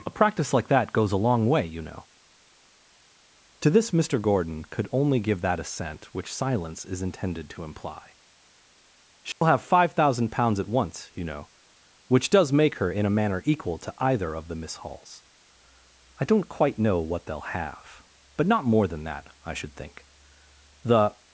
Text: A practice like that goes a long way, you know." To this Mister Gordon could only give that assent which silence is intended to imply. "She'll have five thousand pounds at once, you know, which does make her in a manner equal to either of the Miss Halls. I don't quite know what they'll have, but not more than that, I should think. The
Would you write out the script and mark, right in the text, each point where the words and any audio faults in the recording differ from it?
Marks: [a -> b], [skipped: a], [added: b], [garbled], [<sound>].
A practice like that goes a long way, you know." To this Mister Gordon could only give that assent which silence is intended to imply. "She'll [dropout] have five thousand pounds at once, you know, which does make her in a manner equal to either of the Miss Halls. I don't quite know what they'll have, but not more than that, I should think. The